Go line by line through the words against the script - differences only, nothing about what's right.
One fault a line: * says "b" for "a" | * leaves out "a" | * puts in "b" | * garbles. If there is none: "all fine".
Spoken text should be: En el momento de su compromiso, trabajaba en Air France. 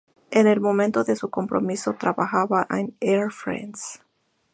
all fine